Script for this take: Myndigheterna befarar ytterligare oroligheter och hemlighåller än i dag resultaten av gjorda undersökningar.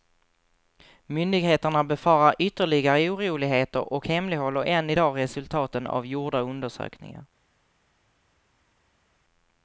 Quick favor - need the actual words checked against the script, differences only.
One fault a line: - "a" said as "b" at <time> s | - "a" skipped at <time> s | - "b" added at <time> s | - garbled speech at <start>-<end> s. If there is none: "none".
none